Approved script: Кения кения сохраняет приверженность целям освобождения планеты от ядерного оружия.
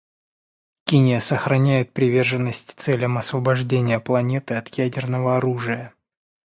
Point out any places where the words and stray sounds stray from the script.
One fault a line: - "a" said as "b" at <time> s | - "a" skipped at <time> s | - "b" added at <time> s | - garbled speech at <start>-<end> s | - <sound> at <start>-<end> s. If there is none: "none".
- "кения" skipped at 1.2 s